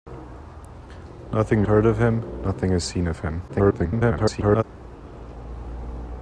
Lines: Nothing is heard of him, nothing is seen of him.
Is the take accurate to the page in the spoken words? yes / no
no